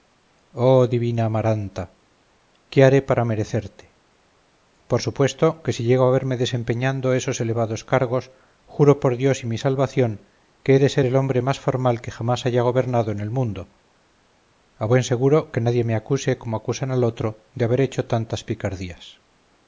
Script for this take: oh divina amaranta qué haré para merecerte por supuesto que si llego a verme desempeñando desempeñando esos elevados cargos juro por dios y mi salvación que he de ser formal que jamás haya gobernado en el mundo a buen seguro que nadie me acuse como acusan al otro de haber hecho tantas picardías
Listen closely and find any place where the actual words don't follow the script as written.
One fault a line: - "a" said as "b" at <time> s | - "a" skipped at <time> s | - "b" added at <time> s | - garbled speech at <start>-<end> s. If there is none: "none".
- "desempeñando" skipped at 7.1 s
- "el hombre más" added at 11.0 s